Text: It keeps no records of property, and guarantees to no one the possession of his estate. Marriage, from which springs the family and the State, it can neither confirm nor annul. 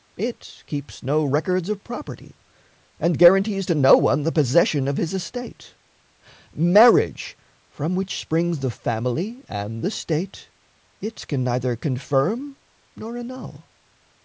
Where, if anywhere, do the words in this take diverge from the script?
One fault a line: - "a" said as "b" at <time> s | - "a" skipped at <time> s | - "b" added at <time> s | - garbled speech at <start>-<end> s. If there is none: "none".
none